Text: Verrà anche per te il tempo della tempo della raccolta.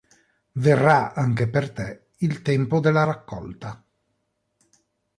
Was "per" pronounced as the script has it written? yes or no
yes